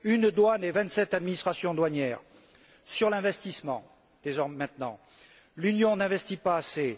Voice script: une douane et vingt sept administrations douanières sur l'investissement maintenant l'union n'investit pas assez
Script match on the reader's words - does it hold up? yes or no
yes